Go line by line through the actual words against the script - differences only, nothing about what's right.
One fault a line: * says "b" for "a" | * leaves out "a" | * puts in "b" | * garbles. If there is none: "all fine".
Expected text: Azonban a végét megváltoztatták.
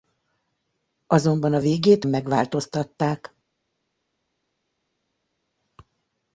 all fine